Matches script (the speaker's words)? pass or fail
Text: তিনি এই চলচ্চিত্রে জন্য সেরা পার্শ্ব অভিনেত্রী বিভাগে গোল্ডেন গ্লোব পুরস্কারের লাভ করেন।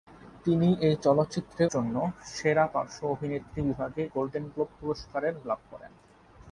pass